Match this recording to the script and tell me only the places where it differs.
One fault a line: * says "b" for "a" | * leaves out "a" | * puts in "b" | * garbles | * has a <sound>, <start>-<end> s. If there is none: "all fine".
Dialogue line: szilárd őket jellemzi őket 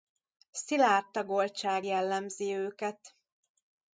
* says "tagoltság" for "őket"